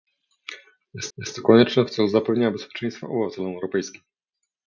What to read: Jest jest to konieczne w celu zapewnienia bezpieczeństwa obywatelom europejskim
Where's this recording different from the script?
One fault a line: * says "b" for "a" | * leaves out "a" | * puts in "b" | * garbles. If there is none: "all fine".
all fine